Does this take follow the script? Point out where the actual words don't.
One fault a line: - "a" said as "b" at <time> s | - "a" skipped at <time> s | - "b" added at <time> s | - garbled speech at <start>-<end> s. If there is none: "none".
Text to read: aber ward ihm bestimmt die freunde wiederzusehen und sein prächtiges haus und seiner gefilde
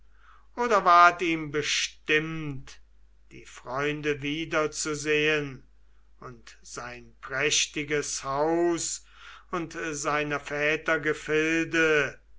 - "aber" said as "oder" at 0.6 s
- "väter" added at 10.4 s